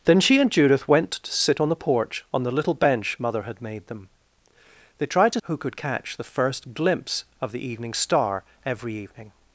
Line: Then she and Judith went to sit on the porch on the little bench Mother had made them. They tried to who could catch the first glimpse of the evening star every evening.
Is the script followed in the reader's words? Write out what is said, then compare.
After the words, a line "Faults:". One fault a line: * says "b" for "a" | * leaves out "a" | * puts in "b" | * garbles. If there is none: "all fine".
Then she and Judith went to sit on the porch on the little bench Mother had made them. They tried to who could catch the first glimpse of the evening star every evening.
Faults:
all fine